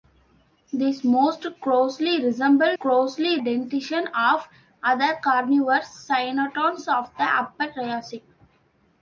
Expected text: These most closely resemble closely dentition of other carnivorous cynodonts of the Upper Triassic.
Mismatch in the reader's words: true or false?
false